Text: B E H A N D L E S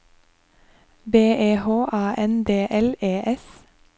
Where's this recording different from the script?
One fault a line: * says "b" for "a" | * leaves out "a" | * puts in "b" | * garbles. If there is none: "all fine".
all fine